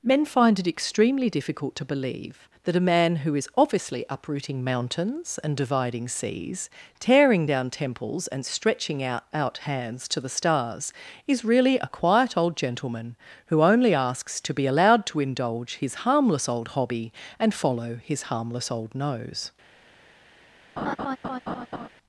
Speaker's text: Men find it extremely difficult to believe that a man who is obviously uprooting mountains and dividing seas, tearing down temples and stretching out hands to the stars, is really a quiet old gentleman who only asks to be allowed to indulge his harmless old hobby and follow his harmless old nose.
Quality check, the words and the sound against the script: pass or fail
fail